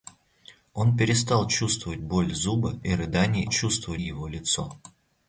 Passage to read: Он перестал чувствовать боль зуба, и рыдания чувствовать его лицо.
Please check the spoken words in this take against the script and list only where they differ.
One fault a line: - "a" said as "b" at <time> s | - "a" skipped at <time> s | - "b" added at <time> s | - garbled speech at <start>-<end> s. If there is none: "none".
none